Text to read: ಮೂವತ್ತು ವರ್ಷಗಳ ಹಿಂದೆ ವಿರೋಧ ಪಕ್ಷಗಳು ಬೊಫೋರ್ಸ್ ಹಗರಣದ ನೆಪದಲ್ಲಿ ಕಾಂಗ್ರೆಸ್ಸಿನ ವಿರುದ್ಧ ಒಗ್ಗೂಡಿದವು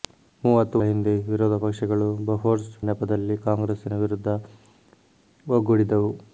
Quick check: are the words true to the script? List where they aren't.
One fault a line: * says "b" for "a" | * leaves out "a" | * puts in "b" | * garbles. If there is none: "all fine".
* leaves out "ವರ್ಷಗಳ"
* leaves out "ಹಗರಣದ"